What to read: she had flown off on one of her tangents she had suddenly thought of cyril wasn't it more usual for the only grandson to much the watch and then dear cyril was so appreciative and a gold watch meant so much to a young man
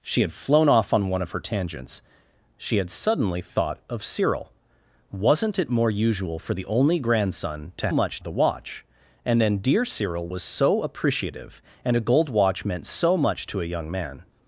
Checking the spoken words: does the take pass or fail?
pass